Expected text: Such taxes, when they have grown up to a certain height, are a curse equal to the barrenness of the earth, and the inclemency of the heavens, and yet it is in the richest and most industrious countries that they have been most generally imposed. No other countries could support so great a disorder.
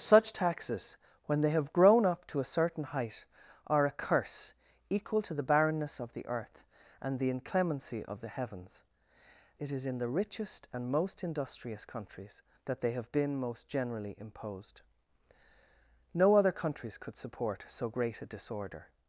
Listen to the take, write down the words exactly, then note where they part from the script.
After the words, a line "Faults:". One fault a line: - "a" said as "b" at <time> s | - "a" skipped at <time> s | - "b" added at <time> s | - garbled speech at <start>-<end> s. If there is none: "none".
Such taxes, when they have grown up to a certain height, are a curse equal to the barrenness of the earth, and the inclemency of the heavens, it is in the richest and most industrious countries that they have been most generally imposed. No other countries could support so great a disorder.
Faults:
- "and yet" skipped at 8.8 s